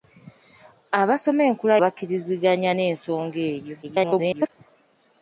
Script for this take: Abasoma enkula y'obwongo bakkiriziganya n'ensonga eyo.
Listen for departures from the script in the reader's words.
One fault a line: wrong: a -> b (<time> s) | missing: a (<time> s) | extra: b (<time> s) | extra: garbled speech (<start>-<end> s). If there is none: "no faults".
missing: y'obwongo (1.8 s)
extra: garbled speech (3.8-4.5 s)